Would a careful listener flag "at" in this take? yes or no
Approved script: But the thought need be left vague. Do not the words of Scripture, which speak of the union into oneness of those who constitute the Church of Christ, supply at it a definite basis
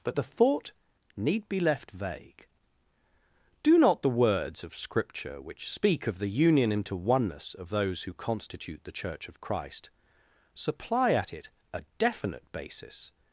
no